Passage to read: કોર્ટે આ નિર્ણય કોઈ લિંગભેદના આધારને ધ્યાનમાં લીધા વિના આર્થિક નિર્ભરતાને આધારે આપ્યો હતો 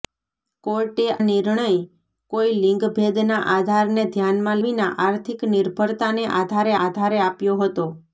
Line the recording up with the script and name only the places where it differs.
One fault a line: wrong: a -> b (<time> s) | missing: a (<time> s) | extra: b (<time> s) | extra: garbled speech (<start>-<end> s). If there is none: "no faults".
missing: આ (1.0 s)
missing: લીધા (4.6 s)
extra: આધારે (6.8 s)